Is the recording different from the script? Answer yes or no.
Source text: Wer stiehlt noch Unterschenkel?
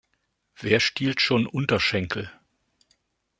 yes